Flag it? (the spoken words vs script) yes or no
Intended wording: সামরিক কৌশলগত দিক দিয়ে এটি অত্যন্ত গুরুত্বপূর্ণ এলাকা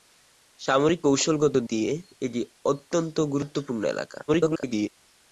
yes